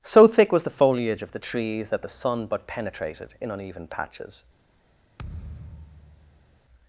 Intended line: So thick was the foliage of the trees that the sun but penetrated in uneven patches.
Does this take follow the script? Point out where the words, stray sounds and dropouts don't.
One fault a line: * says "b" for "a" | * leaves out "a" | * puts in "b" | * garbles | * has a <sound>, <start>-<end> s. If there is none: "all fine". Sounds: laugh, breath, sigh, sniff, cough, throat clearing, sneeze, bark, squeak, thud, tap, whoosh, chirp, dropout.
* has a thud, 5.2-6.6 s